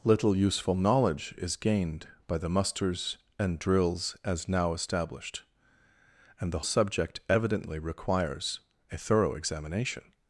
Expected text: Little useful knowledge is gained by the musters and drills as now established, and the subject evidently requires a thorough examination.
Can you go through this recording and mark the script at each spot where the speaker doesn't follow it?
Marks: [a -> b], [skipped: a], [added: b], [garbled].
Little useful knowledge is gained by the musters and drills as now established, and the subject evidently requires a thorough examination.